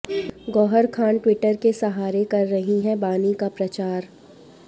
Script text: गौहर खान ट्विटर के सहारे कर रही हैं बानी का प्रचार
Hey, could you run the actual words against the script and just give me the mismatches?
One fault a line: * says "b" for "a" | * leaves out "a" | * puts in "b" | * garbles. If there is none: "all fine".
all fine